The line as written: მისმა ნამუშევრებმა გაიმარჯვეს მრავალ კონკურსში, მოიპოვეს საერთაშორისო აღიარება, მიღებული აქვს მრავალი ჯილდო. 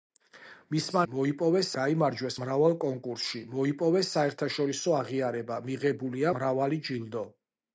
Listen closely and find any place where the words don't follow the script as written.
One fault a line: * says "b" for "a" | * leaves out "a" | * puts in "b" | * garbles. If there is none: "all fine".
* says "მოიპოვეს" for "ნამუშევრებმა"
* leaves out "აქვს"